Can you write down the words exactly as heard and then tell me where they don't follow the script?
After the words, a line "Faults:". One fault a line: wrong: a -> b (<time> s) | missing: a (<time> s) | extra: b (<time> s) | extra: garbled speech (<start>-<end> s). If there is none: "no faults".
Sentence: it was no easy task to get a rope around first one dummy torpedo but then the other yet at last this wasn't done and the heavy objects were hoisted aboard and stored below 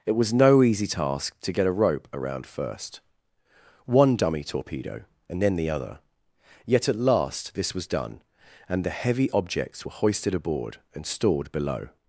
it was no easy task to get a rope around first one dummy torpedo and then the other yet at last this was done and the heavy objects were hoisted aboard and stored below
Faults:
wrong: but -> and (5.3 s)
wrong: wasn't -> was (7.7 s)